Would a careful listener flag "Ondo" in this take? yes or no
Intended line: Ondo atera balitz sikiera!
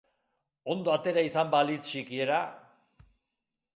no